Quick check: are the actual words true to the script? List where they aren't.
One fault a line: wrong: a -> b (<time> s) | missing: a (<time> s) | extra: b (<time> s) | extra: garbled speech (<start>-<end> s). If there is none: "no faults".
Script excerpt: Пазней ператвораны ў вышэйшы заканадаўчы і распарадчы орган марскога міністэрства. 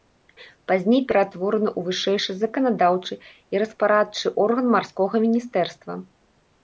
no faults